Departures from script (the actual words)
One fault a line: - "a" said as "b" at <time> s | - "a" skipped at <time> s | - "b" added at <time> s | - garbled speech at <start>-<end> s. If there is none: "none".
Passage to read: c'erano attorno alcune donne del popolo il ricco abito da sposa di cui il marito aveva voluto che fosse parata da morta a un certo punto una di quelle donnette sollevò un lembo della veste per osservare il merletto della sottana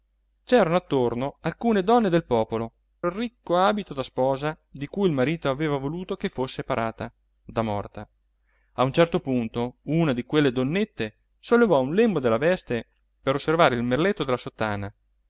none